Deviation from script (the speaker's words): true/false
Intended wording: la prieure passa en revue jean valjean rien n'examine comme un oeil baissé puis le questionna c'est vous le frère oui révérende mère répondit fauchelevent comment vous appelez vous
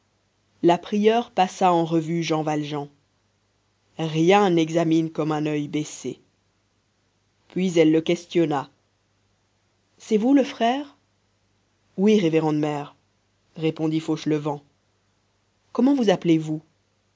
true